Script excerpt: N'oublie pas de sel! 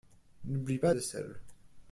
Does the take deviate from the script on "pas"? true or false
false